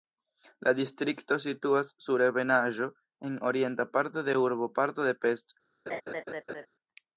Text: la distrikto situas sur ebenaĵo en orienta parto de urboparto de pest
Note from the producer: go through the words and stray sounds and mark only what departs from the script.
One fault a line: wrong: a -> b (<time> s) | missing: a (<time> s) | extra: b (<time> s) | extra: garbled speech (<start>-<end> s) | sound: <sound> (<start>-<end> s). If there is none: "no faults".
sound: laugh (5.9-6.7 s)